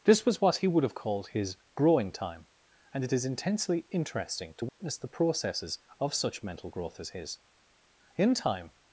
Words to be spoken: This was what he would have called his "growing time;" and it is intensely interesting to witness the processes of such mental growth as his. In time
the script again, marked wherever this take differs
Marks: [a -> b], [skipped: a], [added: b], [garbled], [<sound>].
This was what he would have called his "growing time;" and it is intensely interesting to witness [dropout] the processes of such mental growth as his. In time